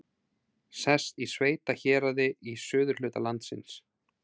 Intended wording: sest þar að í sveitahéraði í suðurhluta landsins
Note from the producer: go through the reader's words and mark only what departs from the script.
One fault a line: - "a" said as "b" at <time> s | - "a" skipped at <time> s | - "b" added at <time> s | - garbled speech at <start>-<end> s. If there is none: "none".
- "þar að" skipped at 1.2 s